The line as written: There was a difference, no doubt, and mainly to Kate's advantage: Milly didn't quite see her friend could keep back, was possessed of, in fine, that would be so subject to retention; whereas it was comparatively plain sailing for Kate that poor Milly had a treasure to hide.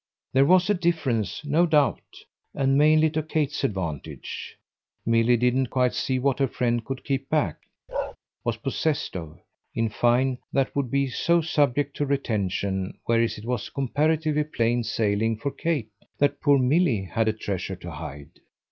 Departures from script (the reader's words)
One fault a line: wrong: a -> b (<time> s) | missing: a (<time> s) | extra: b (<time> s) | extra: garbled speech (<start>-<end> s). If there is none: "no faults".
extra: what (6.2 s)